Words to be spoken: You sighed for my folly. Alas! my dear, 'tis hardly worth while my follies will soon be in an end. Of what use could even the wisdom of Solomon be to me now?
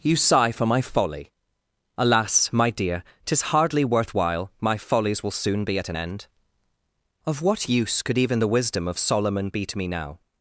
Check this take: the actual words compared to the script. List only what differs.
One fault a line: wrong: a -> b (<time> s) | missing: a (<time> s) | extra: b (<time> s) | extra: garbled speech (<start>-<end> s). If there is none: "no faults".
wrong: sighed -> sigh (0.1 s)
wrong: in -> at (5.8 s)